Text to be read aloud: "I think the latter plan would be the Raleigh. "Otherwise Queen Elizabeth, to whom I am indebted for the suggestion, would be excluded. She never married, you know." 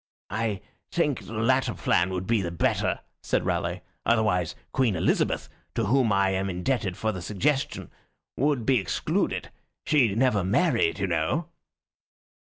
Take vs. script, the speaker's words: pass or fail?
fail